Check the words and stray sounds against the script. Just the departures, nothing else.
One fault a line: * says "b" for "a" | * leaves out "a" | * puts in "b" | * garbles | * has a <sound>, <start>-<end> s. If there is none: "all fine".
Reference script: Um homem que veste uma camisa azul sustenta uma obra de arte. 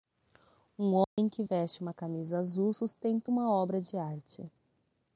* has a dropout, 1.0-1.2 s